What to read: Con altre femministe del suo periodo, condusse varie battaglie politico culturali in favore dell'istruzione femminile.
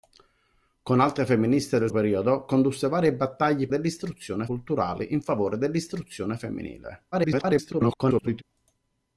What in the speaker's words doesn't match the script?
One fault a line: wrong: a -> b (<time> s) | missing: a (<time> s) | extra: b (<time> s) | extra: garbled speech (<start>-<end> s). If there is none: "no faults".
missing: suo (1.9 s)
wrong: politico -> dell'istruzione (3.7 s)
extra: garbled speech (7.1-8.4 s)